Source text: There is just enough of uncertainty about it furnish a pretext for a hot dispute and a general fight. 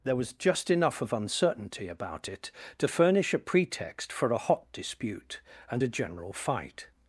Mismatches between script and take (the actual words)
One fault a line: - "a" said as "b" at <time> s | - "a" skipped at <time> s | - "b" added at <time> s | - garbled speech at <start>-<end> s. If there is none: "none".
- "is" said as "was" at 0.1 s
- "to" added at 2.8 s